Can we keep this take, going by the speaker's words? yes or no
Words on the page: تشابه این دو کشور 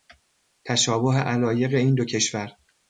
no